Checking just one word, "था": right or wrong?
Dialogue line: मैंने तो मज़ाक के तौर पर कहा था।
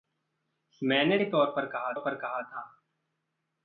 right